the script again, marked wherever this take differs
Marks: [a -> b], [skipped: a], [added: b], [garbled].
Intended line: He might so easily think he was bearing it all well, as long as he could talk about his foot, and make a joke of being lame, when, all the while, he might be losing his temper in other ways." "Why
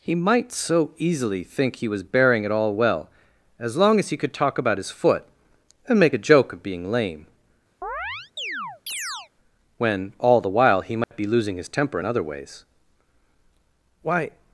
He might so easily think he was bearing it all well, as long as he could talk about his foot, and make a joke of being lame, when, all the while, he might be losing his temper in other ways." "Why